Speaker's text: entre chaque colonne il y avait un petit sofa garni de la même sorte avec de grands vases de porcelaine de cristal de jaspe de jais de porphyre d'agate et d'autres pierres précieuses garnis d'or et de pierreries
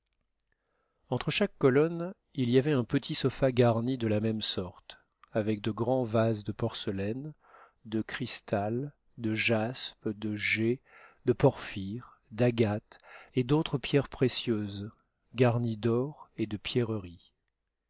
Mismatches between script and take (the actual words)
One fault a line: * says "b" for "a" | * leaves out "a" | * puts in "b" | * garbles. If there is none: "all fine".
all fine